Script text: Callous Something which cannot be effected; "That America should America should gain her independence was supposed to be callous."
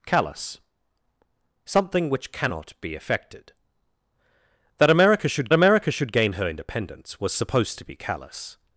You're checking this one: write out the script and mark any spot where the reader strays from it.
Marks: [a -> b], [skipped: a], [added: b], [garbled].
Callous Something which cannot be effected; "That America should America should gain her independence was supposed to be callous."